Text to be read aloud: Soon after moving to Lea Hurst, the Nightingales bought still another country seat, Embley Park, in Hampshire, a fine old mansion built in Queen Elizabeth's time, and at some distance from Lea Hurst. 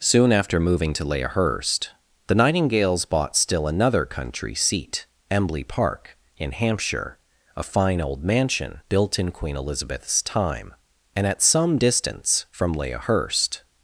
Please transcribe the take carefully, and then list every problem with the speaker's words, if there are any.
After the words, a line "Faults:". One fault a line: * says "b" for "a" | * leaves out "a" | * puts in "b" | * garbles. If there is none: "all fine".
Soon after moving to Lea Hurst, the Nightingales bought still another country seat, Embley Park, in Hampshire, a fine old mansion built in Queen Elizabeth's time, and at some distance from Lea Hurst.
Faults:
all fine